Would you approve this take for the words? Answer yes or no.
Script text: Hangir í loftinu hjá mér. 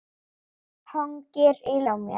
no